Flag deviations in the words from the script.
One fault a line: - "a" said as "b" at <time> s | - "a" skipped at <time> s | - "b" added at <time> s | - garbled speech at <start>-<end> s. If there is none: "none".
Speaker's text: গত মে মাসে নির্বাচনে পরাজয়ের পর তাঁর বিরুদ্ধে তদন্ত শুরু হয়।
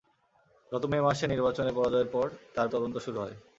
- "বিরুদ্ধে" skipped at 2.7 s